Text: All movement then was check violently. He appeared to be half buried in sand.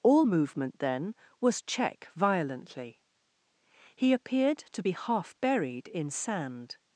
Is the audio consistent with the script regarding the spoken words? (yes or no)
yes